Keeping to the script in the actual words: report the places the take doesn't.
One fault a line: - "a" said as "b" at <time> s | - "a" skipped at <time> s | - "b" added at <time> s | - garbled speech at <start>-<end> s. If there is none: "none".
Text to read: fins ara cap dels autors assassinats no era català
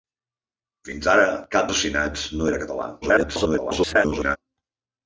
- "dels autors" skipped at 1.7 s
- garbled speech at 3.0-4.4 s